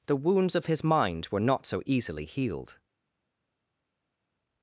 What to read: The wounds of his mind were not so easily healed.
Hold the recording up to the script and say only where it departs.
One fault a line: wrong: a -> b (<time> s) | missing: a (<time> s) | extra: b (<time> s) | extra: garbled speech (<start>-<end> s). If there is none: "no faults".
no faults